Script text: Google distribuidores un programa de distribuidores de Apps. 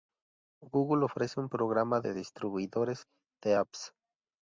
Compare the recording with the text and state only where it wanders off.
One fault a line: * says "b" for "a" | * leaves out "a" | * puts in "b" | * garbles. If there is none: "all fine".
* says "ofrece" for "distribuidores"